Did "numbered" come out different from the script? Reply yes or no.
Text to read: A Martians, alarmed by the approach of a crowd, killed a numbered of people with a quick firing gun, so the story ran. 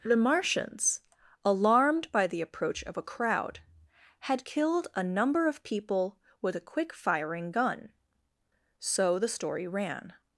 yes